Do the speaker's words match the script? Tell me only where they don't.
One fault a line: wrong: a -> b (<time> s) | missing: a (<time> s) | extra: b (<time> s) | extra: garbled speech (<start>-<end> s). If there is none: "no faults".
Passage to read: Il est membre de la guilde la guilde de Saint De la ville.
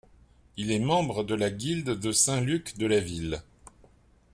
missing: la guilde (1.9 s)
extra: Luc (2.4 s)